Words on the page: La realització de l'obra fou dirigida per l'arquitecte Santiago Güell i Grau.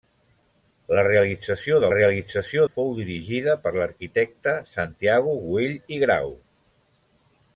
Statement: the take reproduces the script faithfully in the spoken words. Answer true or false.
false